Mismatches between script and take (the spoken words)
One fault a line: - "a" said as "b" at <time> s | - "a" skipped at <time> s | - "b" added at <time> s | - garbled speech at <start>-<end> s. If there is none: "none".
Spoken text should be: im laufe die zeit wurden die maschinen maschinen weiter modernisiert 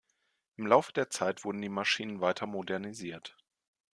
- "die" said as "der" at 0.9 s
- "maschinen" skipped at 2.2 s